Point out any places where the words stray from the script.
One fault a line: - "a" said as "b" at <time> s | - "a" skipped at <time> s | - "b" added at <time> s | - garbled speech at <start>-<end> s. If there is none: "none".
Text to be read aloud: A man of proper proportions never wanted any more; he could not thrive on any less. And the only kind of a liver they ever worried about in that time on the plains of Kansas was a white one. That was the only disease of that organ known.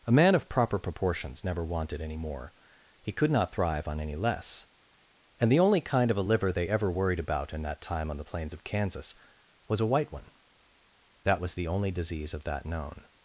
- "organ" skipped at 12.7 s